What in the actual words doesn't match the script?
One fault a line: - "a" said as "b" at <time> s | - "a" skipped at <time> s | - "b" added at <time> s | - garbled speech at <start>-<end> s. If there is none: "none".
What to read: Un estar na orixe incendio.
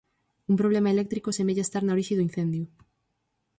- "problema eléctrico semella" added at 0.6 s
- "do" added at 2.2 s